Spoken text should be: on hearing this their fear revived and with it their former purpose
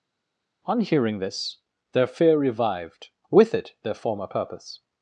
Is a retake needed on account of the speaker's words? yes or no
yes